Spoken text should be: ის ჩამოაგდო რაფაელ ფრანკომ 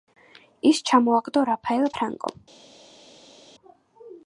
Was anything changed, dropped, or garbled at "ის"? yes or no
no